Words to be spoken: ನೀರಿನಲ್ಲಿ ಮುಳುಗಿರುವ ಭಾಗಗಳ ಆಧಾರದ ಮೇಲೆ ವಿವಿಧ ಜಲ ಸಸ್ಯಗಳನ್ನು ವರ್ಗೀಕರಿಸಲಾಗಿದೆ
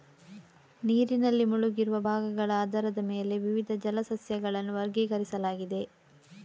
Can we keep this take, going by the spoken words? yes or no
yes